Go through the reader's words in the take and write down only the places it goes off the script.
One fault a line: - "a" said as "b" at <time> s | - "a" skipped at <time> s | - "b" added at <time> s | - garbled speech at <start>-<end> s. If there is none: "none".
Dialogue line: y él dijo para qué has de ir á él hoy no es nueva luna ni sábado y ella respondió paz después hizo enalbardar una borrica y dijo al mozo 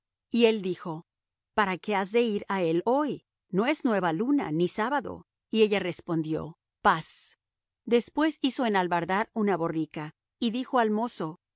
none